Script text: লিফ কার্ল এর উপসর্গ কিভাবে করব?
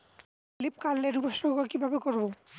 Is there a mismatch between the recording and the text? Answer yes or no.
no